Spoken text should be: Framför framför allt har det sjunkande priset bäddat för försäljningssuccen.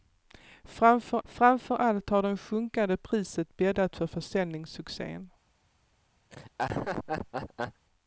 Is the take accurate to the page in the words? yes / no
yes